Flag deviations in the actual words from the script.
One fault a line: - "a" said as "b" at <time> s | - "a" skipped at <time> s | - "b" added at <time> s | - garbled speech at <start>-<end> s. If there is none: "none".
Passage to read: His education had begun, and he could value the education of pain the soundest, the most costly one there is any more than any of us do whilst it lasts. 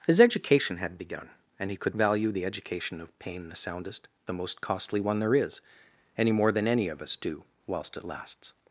none